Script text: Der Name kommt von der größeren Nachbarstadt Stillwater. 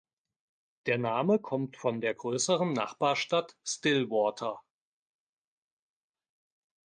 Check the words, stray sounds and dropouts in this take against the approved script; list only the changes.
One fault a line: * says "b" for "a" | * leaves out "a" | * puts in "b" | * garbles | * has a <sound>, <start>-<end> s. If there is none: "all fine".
all fine